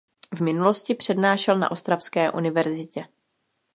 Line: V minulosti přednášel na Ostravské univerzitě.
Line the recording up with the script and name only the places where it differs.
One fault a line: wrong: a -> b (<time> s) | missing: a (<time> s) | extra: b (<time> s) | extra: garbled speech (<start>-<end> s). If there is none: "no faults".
no faults